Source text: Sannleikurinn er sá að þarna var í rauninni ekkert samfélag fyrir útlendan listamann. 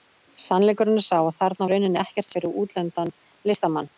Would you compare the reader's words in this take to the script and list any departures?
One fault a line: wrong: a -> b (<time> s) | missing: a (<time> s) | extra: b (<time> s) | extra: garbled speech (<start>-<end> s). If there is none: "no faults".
missing: var (1.7 s)
missing: samfélag (2.3 s)